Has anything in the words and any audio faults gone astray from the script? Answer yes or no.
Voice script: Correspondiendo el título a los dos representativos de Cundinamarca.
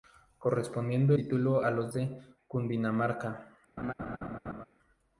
yes